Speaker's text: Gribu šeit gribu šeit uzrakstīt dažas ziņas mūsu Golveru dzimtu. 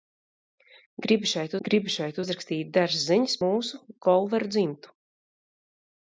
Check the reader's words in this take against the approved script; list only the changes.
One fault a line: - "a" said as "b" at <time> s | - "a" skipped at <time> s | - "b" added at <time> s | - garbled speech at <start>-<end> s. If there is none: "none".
none